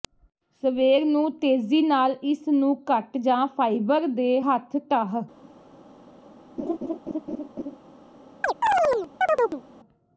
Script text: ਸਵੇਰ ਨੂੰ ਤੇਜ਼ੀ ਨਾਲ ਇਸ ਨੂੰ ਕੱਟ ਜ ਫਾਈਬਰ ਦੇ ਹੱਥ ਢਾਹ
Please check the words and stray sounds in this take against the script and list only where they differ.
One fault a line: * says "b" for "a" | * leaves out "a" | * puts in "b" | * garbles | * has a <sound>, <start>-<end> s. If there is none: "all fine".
* has a laugh, 6.6-7.8 s
* has a chirp, 8.4-9.6 s